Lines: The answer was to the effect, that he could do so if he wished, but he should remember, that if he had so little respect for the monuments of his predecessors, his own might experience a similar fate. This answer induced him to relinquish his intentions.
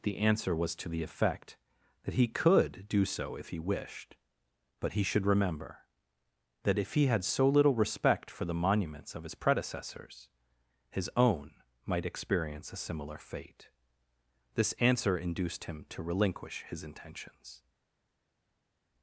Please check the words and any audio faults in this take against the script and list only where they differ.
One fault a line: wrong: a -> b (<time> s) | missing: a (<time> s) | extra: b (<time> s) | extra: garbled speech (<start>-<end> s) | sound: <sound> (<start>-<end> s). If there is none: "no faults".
no faults